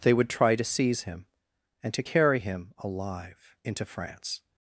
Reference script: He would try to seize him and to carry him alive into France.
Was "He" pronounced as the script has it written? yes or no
no